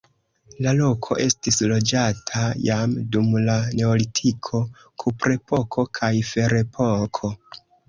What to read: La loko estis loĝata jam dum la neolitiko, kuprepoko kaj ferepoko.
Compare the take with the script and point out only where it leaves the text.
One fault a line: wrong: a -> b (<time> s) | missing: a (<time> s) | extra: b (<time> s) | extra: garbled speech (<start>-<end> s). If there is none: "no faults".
no faults